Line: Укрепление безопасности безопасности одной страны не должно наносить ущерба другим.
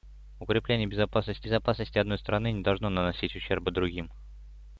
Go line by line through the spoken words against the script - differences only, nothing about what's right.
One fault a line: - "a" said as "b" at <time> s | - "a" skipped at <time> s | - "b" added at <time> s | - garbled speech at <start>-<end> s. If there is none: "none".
none